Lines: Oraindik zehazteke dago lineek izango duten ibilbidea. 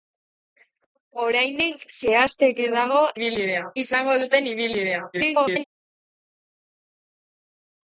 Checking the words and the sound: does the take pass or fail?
fail